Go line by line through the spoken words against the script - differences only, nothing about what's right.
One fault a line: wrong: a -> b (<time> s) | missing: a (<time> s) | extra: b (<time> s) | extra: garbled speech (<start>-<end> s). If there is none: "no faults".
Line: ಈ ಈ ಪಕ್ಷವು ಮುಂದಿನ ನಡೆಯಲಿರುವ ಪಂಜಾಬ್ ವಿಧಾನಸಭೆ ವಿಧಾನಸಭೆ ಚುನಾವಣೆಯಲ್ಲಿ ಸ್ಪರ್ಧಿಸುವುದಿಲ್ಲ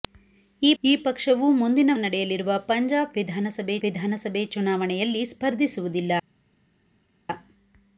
no faults